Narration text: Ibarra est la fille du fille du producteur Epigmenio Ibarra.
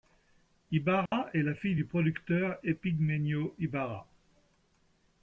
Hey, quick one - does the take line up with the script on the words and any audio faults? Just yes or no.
no